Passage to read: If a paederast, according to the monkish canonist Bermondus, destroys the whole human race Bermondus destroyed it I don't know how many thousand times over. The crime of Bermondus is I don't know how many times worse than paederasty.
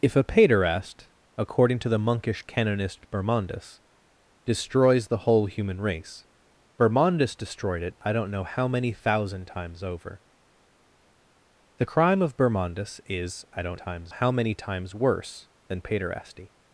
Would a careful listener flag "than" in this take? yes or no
no